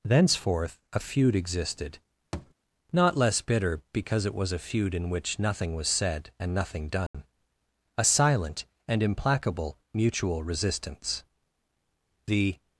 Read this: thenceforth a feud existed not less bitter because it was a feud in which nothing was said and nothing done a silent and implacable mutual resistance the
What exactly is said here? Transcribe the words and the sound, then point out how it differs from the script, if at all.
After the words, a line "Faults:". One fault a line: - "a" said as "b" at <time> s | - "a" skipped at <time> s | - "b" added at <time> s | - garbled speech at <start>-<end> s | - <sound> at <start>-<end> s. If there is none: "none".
thenceforth a feud existed not less bitter because it was a feud in which nothing was said and nothing done a silent and implacable mutual resistance the
Faults:
- thud at 2.3-2.5 s
- dropout at 7.1-7.1 s